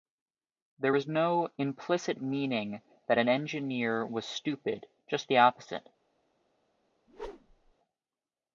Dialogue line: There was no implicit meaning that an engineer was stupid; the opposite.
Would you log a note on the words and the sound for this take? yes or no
yes